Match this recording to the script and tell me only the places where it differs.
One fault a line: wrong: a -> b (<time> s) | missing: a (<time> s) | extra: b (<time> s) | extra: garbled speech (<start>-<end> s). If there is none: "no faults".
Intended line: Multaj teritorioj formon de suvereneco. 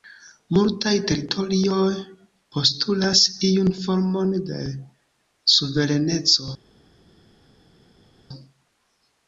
extra: postulas iun (2.6 s)